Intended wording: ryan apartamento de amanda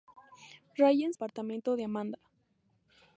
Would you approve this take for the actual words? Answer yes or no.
yes